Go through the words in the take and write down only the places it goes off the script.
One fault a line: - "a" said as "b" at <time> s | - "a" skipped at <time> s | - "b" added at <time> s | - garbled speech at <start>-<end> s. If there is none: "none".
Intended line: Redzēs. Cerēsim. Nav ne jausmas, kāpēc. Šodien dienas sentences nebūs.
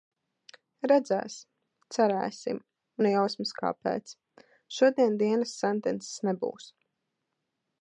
- "Nav" skipped at 2.6 s